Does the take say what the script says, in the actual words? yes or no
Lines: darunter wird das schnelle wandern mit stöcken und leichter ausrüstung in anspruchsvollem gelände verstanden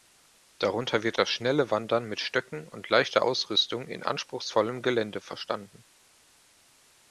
yes